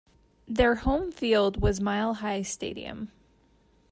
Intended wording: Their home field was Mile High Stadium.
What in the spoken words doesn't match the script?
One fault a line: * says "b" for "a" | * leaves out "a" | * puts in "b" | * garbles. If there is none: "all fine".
all fine